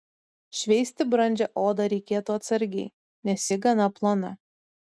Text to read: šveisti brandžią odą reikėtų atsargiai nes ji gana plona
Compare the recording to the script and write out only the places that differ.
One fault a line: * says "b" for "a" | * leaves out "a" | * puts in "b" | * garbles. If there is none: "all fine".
all fine